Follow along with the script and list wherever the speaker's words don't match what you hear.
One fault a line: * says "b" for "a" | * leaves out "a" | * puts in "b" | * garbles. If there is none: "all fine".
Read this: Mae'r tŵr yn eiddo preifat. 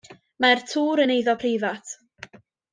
all fine